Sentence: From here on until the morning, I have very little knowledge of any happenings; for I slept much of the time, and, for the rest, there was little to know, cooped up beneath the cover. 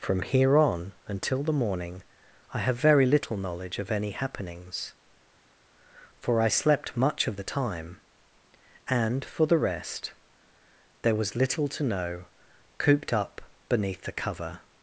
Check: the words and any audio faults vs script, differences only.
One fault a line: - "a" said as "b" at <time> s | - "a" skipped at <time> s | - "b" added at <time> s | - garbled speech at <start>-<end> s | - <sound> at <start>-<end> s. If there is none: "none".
none